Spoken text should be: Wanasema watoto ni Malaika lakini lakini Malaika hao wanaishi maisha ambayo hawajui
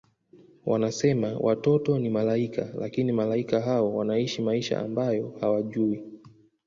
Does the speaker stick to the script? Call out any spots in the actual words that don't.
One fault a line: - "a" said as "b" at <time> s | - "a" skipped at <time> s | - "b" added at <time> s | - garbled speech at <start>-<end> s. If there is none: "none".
- "lakini" skipped at 3.1 s